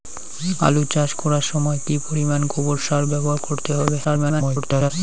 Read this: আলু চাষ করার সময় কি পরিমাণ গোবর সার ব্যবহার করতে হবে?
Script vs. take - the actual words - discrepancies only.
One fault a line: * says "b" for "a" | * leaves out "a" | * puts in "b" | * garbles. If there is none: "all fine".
* garbles